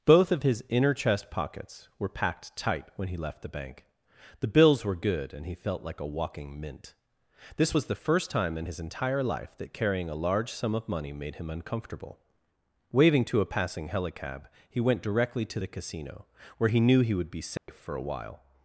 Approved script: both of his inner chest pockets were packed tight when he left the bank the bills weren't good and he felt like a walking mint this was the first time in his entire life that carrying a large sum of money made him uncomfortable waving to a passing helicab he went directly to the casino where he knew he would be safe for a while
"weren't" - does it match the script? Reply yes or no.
no